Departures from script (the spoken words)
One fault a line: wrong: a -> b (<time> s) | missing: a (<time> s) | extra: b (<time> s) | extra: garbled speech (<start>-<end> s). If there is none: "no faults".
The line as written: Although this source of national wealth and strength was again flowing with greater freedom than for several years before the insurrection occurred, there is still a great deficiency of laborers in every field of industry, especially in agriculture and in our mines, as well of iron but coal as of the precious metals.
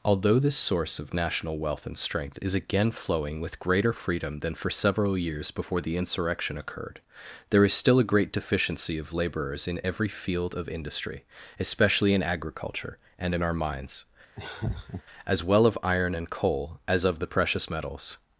wrong: was -> is (2.4 s)
wrong: but -> and (16.1 s)